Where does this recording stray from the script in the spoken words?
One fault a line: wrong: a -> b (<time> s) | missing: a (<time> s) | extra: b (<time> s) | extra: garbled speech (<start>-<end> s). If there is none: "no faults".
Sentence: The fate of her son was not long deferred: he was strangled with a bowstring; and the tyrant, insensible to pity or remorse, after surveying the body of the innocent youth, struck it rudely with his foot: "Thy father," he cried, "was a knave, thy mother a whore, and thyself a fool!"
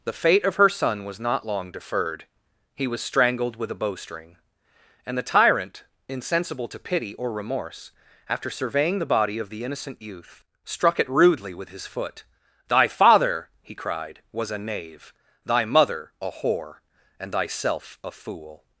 no faults